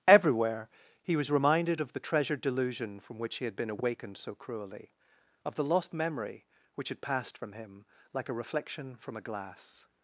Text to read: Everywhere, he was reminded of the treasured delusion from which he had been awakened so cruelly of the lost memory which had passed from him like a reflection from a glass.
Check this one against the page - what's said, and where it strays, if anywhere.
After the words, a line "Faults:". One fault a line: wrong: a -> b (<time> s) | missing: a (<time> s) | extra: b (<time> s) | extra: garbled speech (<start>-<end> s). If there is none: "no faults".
Everywhere, he was reminded of the treasured delusion from which he had been awakened so cruelly of the lost memory which had passed from him like a reflection from a glass.
Faults:
no faults